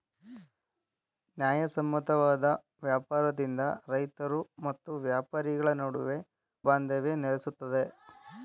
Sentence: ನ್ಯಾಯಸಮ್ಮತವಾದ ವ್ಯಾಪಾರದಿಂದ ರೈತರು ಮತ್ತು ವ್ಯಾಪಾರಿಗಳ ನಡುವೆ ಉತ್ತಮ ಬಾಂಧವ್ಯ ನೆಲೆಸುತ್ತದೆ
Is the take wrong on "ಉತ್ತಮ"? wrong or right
wrong